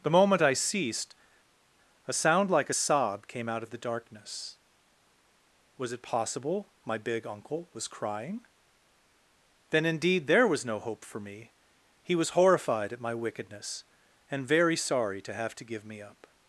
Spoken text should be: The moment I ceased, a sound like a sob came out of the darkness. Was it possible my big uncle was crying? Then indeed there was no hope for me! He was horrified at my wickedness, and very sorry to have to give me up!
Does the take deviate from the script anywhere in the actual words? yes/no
no